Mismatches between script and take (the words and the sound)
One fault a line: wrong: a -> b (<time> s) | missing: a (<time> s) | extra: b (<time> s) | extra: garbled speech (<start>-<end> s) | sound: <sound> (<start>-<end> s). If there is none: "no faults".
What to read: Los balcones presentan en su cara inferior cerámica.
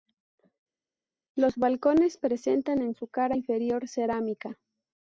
no faults